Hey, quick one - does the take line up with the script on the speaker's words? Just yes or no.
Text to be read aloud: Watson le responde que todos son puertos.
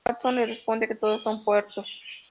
yes